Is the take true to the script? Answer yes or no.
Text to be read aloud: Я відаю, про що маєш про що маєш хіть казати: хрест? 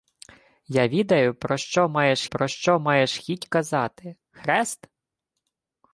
yes